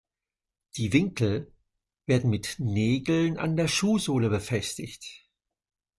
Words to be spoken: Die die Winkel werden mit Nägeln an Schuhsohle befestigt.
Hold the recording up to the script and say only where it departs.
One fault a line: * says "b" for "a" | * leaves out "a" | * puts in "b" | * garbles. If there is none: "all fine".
* leaves out "die"
* puts in "der"